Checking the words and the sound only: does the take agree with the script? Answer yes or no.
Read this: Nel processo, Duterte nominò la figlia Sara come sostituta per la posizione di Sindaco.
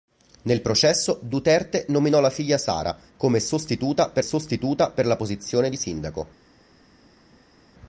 no